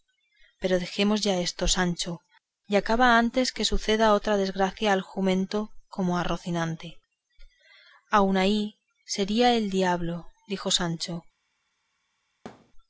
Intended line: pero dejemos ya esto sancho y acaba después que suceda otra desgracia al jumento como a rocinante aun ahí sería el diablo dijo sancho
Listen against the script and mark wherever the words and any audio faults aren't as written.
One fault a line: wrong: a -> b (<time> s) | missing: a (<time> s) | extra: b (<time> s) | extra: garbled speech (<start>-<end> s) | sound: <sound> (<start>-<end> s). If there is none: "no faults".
wrong: después -> antes (3.2 s)
sound: thud (12.5-12.7 s)